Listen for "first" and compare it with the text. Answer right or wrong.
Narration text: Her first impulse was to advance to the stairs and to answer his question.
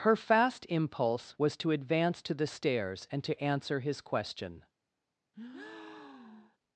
wrong